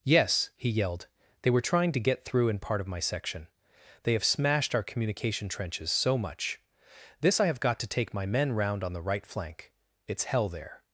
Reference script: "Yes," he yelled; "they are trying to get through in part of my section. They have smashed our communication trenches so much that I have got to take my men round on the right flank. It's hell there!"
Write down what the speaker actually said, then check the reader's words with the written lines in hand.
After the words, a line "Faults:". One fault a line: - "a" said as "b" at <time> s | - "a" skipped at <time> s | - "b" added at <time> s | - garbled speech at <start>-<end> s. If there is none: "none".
"Yes," he yelled; "they were trying to get through in part of my section. They have smashed our communication trenches so much this I have got to take my men round on the right flank. It's hell there!"
Faults:
- "are" said as "were" at 1.5 s
- "that" said as "this" at 7.2 s